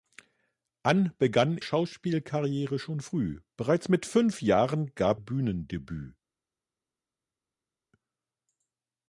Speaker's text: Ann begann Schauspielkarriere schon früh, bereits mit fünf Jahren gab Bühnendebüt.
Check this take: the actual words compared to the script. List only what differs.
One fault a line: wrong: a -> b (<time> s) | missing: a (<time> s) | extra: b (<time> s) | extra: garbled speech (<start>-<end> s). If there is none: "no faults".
no faults